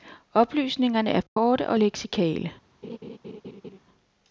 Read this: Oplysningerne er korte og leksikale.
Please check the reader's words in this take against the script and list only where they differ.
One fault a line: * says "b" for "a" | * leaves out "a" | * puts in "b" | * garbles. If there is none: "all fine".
all fine